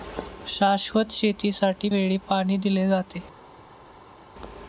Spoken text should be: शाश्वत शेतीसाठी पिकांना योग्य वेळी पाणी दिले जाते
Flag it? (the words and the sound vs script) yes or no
yes